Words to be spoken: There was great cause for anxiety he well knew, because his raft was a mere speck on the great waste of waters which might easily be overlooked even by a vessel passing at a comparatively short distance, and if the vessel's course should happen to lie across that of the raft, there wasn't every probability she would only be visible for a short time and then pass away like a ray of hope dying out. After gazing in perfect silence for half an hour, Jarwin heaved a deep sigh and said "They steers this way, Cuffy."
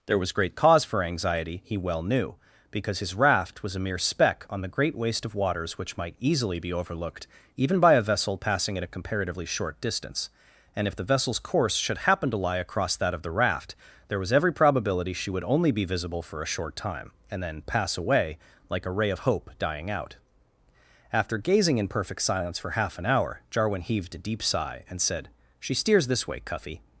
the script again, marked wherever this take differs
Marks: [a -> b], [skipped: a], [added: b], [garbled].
There was great cause for anxiety he well knew, because his raft was a mere speck on the great waste of waters which might easily be overlooked even by a vessel passing at a comparatively short distance, and if the vessel's course should happen to lie across that of the raft, there [wasn't -> was] every probability she would only be visible for a short time and then pass away like a ray of hope dying out. After gazing in perfect silence for half an hour, Jarwin heaved a deep sigh and said ["They -> She] steers this way, Cuffy."